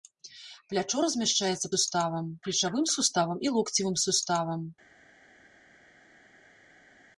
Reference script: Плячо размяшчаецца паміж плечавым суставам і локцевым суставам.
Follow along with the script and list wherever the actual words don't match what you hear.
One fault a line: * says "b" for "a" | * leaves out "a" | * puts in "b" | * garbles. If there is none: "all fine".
* says "суставам" for "паміж"